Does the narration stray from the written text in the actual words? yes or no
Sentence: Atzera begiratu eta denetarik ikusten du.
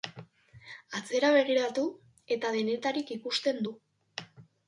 no